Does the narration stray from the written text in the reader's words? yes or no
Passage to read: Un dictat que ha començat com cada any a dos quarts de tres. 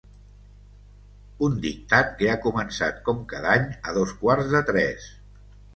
no